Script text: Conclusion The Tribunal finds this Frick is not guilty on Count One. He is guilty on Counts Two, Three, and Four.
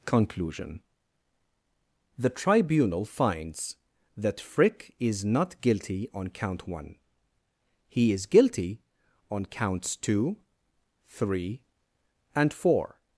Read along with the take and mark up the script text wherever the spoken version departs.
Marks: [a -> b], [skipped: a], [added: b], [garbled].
Conclusion The Tribunal finds [this -> that] Frick is not guilty on Count One. He is guilty on Counts Two, Three, and Four.